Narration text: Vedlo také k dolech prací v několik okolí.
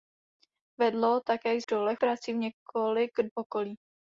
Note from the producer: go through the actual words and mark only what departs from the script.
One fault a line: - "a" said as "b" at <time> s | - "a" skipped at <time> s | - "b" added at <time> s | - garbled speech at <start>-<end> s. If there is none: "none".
none